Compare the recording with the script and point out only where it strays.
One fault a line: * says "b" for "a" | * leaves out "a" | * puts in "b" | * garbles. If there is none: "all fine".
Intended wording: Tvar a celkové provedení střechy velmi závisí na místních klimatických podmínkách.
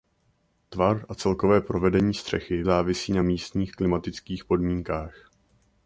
* leaves out "velmi"